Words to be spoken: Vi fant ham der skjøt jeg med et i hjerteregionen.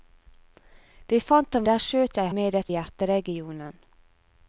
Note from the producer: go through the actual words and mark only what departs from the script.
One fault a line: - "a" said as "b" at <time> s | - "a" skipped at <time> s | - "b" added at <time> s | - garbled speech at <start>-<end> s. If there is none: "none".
none